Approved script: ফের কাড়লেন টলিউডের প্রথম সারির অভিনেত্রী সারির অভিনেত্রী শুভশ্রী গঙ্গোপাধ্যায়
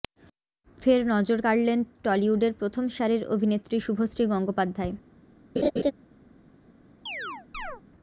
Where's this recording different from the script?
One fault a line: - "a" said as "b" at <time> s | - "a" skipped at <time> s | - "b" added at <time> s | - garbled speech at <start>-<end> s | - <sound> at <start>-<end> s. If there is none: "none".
- "নজর" added at 1.1 s
- "সারির অভিনেত্রী" skipped at 3.8 s
- laugh at 5.6-5.9 s
- chirp at 7.1-7.8 s